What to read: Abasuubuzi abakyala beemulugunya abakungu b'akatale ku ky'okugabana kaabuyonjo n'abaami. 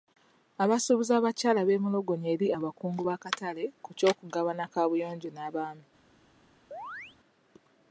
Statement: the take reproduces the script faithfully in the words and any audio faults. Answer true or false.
false